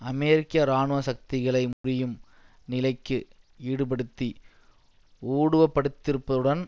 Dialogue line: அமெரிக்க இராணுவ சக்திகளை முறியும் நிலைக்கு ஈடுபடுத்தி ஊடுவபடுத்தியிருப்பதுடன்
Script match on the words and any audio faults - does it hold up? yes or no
no